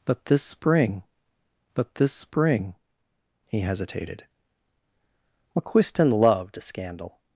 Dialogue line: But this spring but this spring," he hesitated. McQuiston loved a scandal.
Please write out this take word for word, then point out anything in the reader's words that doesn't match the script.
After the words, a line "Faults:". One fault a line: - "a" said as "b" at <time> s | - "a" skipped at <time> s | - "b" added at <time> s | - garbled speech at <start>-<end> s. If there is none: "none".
But this spring but this spring," he hesitated. McQuiston loved a scandal.
Faults:
none